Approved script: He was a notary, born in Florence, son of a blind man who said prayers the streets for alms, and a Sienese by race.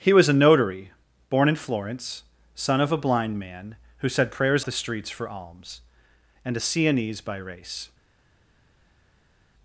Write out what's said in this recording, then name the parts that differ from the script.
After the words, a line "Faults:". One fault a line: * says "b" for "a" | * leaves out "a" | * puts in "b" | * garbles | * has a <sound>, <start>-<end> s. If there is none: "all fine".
He was a notary, born in Florence, son of a blind man who said prayers the streets for alms, and a Sienese by race.
Faults:
all fine